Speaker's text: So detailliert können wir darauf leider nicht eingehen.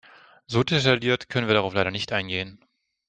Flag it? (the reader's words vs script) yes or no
no